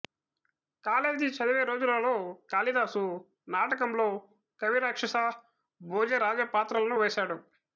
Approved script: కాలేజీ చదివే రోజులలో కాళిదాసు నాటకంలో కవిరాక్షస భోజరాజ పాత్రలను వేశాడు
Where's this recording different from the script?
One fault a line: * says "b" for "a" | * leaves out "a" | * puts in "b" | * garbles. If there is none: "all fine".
all fine